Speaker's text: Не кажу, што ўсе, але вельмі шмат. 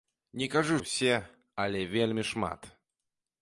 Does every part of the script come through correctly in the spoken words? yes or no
no